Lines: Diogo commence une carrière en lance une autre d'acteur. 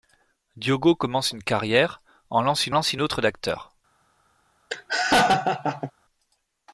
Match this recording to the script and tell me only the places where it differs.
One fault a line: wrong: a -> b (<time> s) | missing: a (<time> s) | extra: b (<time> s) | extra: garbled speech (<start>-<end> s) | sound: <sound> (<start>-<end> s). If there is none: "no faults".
extra: lance une (2.7 s)
sound: laugh (4.7-5.9 s)